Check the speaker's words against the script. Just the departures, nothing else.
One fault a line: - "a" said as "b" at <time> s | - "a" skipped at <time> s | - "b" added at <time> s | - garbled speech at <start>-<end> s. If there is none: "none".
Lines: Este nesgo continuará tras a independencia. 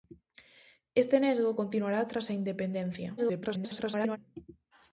- garbled speech at 3.2-4.2 s